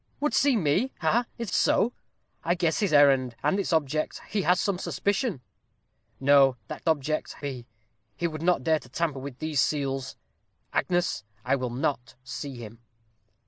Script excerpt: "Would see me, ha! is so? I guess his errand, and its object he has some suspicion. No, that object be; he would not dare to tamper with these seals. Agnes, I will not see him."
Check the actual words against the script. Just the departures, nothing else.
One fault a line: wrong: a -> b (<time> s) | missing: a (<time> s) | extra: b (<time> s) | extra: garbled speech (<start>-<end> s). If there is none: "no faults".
no faults